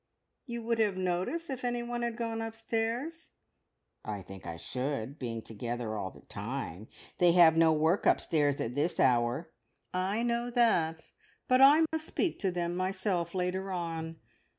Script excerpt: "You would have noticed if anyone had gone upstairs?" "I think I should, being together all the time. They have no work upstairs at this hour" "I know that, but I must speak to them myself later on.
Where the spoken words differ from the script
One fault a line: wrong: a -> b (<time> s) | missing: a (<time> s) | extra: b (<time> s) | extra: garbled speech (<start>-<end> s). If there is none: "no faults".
no faults